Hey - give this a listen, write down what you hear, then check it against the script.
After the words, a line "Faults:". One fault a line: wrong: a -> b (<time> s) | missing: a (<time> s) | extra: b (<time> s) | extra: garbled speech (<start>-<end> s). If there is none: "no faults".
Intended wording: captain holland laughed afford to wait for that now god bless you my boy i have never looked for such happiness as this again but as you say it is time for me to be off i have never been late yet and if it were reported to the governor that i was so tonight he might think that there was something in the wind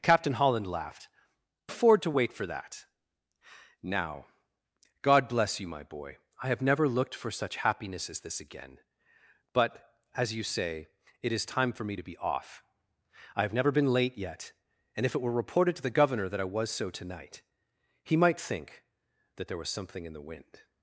captain holland laughed afford to wait for that now god bless you my boy i have never looked for such happiness as this again but as you say it is time for me to be off i have never been late yet and if it were reported to the governor that i was so tonight he might think that there was something in the wind
Faults:
no faults